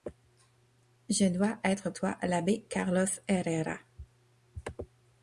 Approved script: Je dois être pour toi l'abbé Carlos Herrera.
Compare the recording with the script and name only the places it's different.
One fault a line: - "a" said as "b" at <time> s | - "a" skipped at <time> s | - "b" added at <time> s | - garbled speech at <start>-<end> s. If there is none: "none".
- "pour" skipped at 1.9 s